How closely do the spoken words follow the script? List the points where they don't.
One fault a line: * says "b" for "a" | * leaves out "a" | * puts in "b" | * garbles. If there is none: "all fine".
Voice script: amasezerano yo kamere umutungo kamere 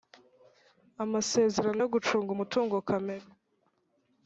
* says "gucunga" for "kamere"